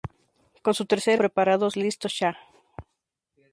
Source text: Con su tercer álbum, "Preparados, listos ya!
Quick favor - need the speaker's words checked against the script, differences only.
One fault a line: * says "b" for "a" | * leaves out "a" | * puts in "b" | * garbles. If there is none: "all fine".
* leaves out "álbum"